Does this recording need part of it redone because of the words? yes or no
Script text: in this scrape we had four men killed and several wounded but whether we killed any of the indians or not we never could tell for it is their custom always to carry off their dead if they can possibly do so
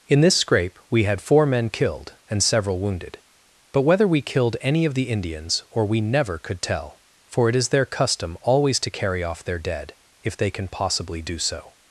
yes